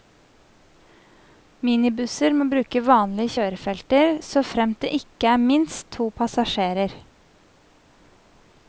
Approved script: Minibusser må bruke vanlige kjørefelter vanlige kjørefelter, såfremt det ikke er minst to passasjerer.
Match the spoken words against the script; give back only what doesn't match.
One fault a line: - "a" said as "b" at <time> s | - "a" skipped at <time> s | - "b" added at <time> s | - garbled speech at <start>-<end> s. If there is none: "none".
- "vanlige kjørefelter" skipped at 4.1 s